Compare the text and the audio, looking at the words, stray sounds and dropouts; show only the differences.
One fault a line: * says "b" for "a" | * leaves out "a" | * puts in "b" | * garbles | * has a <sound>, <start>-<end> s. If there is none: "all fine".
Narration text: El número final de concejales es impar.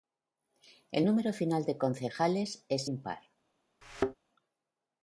* has a thud, 3.8-4.2 s